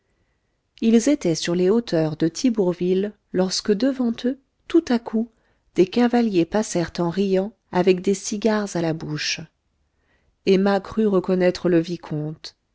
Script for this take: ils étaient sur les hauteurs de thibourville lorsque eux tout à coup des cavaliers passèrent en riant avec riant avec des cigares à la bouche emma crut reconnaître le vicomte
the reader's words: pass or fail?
fail